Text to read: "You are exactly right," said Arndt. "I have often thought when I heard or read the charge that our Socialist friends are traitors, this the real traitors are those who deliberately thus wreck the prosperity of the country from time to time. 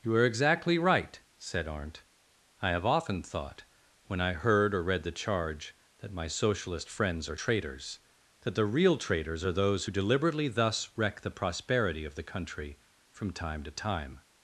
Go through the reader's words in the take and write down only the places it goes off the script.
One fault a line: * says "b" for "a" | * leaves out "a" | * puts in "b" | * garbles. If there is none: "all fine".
* says "my" for "our"
* says "that" for "this"